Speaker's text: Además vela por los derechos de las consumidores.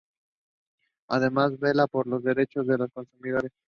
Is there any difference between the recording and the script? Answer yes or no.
yes